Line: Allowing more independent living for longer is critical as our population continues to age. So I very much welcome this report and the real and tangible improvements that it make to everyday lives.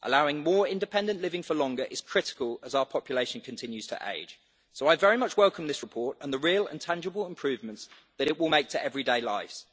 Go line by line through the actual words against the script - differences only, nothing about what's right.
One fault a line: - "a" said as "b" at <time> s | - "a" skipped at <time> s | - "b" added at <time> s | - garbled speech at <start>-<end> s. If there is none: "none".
- "will" added at 8.4 s